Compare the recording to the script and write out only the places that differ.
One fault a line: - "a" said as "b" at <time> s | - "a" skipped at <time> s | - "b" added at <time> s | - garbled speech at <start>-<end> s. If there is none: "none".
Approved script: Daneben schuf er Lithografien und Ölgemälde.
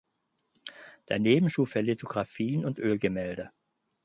none